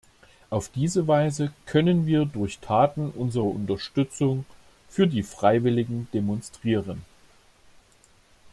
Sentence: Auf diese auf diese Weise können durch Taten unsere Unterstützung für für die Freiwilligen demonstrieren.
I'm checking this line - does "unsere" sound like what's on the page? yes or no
yes